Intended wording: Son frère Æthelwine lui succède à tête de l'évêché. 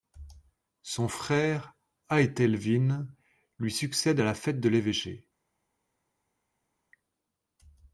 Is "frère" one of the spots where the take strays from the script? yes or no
no